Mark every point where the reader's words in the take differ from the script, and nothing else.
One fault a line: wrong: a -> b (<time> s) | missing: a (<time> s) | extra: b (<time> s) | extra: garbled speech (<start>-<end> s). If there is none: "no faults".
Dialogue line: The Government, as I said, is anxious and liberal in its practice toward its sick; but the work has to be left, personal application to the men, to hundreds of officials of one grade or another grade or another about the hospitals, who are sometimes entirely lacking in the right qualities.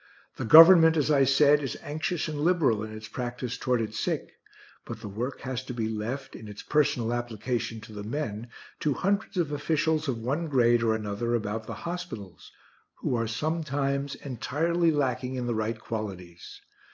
extra: in its (6.3 s)
missing: grade or another (11.3 s)